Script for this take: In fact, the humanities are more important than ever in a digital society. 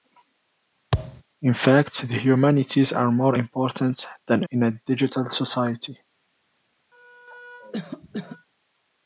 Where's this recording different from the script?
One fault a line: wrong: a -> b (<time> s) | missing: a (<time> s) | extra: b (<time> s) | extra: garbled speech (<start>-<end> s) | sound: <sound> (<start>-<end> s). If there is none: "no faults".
sound: thud (0.9-1.2 s)
missing: ever (4.4 s)
sound: cough (6.9-8.5 s)